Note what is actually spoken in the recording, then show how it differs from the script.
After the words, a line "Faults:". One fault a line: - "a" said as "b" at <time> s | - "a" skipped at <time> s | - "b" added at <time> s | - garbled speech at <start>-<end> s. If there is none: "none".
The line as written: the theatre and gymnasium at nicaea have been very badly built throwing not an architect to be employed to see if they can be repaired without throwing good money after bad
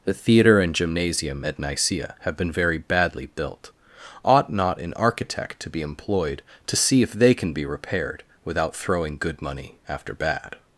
the theatre and gymnasium at nicaea have been very badly built ought not an architect to be employed to see if they can be repaired without throwing good money after bad
Faults:
- "throwing" said as "ought" at 4.2 s